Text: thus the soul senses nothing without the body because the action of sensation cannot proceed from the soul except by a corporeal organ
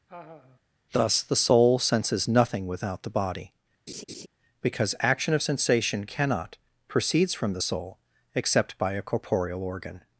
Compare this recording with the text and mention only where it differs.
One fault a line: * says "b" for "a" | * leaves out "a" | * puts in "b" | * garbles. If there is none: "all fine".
* leaves out "the"
* says "proceeds" for "proceed"